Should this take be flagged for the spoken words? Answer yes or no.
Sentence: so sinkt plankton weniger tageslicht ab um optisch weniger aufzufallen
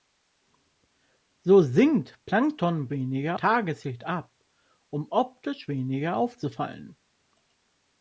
no